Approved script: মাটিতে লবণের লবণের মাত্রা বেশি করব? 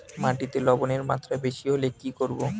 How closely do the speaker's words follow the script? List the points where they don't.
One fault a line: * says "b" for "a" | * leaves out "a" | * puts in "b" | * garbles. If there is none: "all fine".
* leaves out "লবণের"
* puts in "হলে কি"